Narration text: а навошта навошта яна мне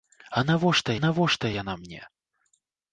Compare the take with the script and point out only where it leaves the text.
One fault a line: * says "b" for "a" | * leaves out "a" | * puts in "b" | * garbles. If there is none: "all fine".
all fine